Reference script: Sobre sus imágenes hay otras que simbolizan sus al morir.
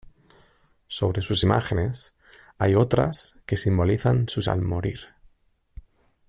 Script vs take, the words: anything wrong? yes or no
no